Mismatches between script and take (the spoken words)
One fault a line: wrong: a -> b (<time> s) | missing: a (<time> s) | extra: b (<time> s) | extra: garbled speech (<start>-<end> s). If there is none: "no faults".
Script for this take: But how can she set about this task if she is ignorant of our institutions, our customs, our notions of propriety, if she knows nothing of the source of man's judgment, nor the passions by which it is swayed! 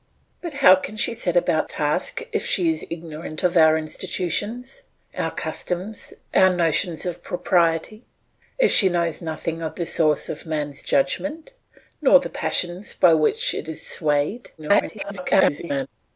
missing: this (1.7 s)
extra: garbled speech (14.6-15.9 s)